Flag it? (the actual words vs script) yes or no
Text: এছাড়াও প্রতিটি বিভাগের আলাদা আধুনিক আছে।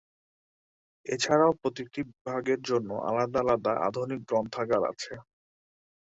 yes